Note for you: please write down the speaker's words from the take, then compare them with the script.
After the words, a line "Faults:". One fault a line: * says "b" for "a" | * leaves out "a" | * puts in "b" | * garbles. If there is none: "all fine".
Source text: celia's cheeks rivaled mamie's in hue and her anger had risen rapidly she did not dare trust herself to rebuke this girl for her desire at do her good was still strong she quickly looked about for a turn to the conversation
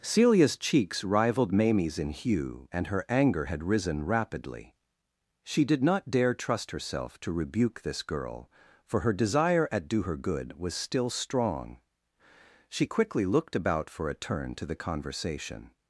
celia's cheeks rivaled mamie's in hue and her anger had risen rapidly she did not dare trust herself to rebuke this girl for her desire at do her good was still strong she quickly looked about for a turn to the conversation
Faults:
all fine